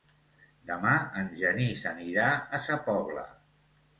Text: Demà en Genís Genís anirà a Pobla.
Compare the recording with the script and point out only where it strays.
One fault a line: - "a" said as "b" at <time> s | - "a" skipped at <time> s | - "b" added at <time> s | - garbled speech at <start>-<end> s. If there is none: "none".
- "Genís" skipped at 1.8 s
- "Sa" added at 2.7 s